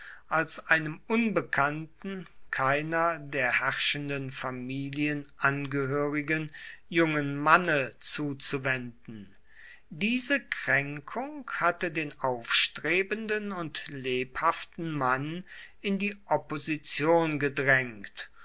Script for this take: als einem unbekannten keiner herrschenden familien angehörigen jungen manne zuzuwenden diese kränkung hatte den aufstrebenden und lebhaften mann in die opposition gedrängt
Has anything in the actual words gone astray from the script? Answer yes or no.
yes